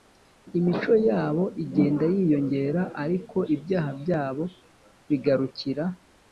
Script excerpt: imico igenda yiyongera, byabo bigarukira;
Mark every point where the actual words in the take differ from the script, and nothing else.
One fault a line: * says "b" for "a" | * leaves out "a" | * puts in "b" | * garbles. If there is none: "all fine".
* puts in "yabo"
* puts in "ariko ibyaha"